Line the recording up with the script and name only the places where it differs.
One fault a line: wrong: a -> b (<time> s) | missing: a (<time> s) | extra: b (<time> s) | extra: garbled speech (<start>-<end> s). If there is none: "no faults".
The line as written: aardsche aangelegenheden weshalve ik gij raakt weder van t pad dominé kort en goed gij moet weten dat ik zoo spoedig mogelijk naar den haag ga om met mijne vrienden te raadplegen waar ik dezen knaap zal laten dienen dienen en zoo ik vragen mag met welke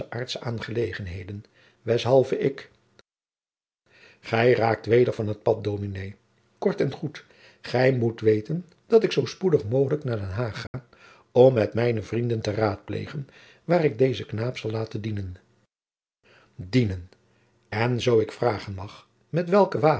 no faults